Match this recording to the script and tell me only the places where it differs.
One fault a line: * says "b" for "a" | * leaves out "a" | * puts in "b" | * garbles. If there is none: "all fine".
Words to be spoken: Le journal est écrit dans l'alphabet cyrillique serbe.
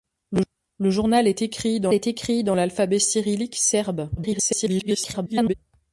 * puts in "est écrit dans"
* garbles